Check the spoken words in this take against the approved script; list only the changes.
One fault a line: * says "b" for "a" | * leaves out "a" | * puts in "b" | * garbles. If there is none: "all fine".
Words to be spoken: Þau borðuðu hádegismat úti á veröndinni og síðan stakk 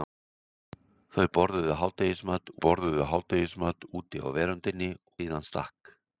* puts in "borðuðu hádegismat"
* leaves out "og"